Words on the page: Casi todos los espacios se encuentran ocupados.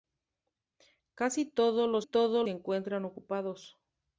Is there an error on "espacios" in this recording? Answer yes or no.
yes